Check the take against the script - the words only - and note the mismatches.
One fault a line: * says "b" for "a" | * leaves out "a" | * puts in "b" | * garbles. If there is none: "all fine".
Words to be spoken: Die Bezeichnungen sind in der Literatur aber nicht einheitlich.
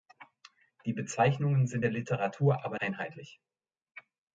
* leaves out "in"
* leaves out "nicht"